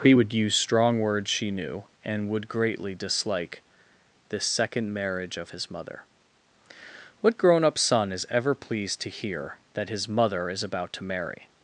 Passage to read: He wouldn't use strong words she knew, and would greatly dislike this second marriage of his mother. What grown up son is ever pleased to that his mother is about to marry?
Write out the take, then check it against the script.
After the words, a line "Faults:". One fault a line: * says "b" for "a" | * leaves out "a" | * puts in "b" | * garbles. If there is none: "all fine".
He would use strong words she knew, and would greatly dislike this second marriage of his mother. What grown up son is ever pleased to hear that his mother is about to marry?
Faults:
* says "would" for "wouldn't"
* puts in "hear"